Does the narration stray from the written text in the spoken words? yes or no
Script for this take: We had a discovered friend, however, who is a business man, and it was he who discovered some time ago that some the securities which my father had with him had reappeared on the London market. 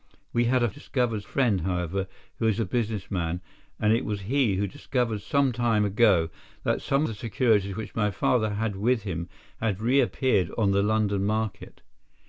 no